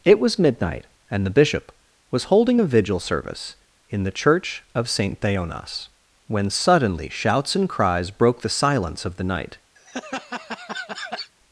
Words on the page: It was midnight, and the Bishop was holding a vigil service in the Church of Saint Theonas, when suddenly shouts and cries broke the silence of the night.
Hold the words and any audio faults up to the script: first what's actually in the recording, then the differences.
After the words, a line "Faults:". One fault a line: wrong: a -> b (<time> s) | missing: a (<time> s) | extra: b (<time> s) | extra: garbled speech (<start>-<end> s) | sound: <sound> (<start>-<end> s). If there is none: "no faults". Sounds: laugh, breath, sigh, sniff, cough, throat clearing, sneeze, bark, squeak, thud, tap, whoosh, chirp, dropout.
It was midnight, and the Bishop was holding a vigil service in the Church of Saint Theonas, when suddenly shouts and cries broke the silence of the night.
Faults:
sound: laugh (9.8-11.3 s)